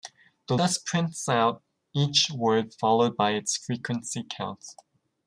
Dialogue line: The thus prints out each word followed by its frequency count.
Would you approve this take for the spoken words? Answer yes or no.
yes